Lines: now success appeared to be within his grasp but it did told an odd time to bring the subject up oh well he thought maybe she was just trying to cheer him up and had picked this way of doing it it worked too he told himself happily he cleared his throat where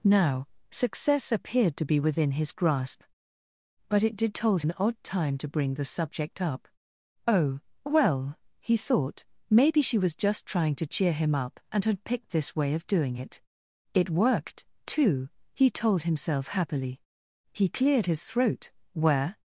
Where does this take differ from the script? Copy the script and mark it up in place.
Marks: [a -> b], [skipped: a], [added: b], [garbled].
now success appeared to be within his grasp but it did told an odd time to bring the subject up oh well he thought maybe she was just trying to cheer him up and had picked this way of doing it it worked too he told himself happily he cleared his throat where